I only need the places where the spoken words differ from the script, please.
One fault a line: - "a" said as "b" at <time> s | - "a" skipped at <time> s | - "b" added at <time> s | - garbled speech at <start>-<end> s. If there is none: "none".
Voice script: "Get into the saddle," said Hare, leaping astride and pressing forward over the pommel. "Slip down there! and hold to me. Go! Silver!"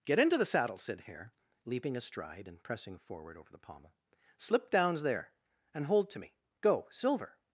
- "down" said as "downs" at 4.7 s